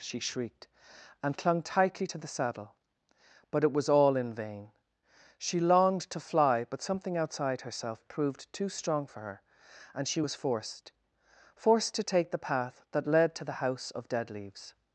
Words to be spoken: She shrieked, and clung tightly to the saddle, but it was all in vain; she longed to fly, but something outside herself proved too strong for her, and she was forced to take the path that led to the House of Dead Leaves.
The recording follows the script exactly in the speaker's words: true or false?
false